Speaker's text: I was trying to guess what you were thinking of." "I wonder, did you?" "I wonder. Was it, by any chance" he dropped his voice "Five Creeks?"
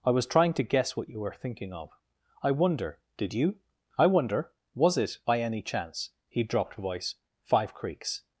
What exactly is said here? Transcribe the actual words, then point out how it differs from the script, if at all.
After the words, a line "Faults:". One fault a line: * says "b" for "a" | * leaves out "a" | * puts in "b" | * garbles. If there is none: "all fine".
I was trying to guess what you were thinking of." "I wonder, did you?" "I wonder. Was it, by any chance" he dropped voice "Five Creeks?"
Faults:
* leaves out "his"